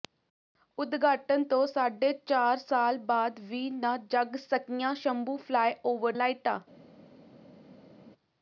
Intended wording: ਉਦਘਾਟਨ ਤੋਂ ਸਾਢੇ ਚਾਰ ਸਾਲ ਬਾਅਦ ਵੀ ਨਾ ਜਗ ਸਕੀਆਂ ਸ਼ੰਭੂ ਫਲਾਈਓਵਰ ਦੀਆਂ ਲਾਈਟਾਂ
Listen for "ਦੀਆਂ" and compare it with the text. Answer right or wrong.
wrong